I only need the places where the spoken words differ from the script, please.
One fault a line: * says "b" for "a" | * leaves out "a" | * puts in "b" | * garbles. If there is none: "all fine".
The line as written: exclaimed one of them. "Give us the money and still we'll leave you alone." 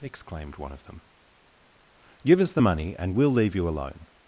* leaves out "still"